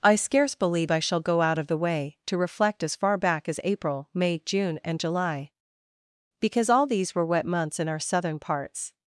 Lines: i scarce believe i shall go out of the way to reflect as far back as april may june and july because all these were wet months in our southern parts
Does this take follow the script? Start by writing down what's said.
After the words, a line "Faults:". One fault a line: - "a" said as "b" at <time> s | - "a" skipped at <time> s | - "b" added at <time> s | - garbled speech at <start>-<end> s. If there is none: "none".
i scarce believe i shall go out of the way to reflect as far back as april may june and july because all these were wet months in our southern parts
Faults:
none